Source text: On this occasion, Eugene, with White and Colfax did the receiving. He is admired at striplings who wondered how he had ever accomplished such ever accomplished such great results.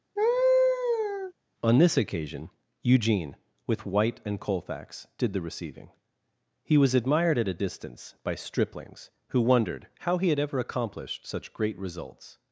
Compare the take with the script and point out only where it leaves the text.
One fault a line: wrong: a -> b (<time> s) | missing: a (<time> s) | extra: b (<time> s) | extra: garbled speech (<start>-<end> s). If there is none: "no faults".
wrong: is -> was (6.8 s)
extra: a distance by (7.5 s)
missing: ever accomplished such (11.5 s)